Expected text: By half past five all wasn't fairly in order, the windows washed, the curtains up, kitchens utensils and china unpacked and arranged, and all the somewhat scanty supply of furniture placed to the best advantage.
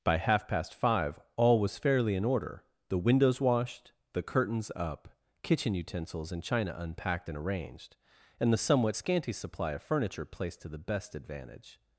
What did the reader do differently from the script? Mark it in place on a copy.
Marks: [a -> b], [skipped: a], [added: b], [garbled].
By half past five all [wasn't -> was] fairly in order, the windows washed, the curtains up, [kitchens -> kitchen] utensils and china unpacked and arranged, and [skipped: all] the somewhat scanty supply of furniture placed to the best advantage.